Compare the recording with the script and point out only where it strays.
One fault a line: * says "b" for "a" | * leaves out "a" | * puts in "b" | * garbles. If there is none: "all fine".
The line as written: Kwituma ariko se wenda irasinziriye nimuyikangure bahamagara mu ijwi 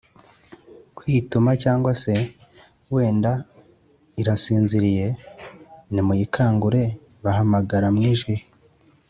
* says "cyangwa" for "ariko"